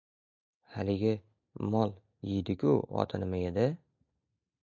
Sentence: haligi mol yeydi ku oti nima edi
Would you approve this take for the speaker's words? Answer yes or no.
yes